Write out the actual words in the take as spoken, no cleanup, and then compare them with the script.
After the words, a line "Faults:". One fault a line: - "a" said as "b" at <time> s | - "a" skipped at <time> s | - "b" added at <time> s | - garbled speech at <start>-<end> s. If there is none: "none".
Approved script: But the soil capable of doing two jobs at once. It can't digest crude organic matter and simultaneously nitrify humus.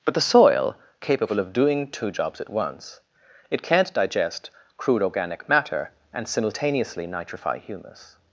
But the soil capable of doing two jobs at once. It can't digest crude organic matter and simultaneously nitrify humus.
Faults:
none